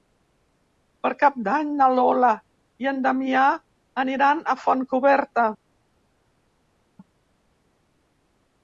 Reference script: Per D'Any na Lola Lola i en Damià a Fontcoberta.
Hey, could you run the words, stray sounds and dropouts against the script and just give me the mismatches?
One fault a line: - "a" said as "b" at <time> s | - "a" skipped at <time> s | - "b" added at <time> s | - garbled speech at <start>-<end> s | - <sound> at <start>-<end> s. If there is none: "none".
- "Cap" added at 1.2 s
- "Lola" skipped at 2.3 s
- "aniran" added at 4.1 s